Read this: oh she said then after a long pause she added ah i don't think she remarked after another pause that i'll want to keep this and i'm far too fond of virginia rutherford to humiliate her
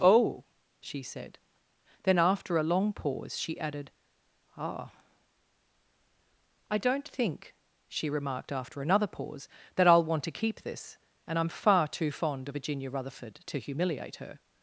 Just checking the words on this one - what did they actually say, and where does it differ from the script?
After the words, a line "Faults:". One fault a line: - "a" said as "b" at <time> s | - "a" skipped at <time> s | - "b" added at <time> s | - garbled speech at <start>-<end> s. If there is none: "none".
oh she said then after a long pause she added ah i don't think she remarked after another pause that i'll want to keep this and i'm far too fond of virginia rutherford to humiliate her
Faults:
none